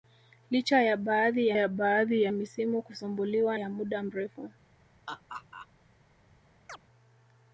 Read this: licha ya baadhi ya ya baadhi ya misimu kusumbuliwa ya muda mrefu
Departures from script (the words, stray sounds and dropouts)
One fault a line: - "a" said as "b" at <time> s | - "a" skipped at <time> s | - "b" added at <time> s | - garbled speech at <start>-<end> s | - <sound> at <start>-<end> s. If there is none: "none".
- laugh at 5.1-5.7 s
- chirp at 6.7-6.8 s